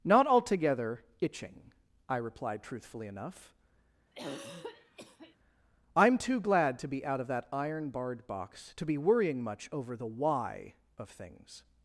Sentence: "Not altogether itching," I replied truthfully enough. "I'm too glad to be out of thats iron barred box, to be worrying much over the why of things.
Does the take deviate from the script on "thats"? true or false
true